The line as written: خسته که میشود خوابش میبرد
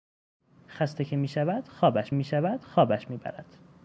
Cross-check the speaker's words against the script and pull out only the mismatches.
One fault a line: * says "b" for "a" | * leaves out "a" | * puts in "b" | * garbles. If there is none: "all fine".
* puts in "میشود خوابش"